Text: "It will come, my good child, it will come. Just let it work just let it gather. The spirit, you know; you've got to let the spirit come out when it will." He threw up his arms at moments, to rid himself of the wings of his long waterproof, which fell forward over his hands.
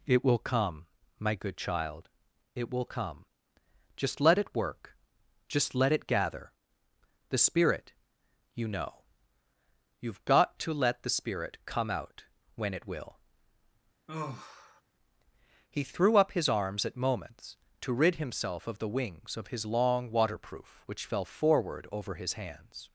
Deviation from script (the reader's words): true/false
false